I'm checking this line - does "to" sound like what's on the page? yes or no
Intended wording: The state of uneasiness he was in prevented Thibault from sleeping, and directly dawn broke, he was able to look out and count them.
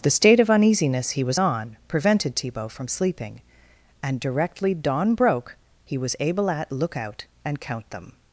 no